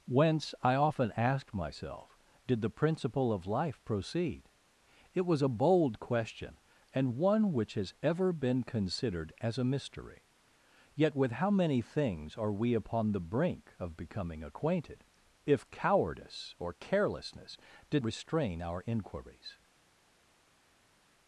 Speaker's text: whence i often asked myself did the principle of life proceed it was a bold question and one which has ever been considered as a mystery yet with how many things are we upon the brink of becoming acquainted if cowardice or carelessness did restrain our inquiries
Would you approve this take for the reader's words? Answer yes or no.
yes